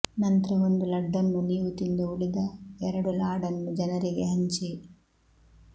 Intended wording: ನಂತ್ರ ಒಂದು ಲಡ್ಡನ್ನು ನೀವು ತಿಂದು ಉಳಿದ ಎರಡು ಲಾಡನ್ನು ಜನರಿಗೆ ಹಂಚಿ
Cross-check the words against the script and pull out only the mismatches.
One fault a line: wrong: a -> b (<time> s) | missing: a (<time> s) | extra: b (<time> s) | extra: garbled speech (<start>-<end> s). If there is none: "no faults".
no faults